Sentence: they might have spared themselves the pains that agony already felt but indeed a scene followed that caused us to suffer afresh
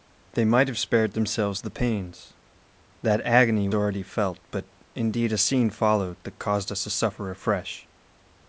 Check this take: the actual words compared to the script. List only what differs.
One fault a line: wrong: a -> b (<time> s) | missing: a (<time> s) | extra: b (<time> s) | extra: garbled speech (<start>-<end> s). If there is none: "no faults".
no faults